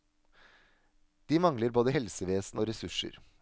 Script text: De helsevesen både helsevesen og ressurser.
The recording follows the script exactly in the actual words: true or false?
false